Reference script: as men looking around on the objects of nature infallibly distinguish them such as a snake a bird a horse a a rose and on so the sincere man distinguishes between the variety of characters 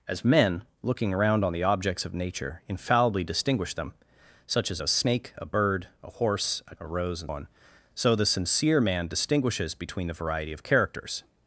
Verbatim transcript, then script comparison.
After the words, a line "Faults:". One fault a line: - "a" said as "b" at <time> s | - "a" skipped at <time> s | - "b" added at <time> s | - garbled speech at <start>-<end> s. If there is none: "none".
as men looking around on the objects of nature infallibly distinguish them such as a snake a bird a horse a a rose and on so the sincere man distinguishes between the variety of characters
Faults:
none